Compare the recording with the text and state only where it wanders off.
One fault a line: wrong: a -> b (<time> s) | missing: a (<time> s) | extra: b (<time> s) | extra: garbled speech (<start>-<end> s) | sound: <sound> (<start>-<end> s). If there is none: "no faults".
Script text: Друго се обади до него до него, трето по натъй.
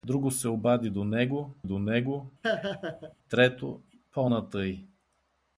sound: laugh (2.4-3.1 s)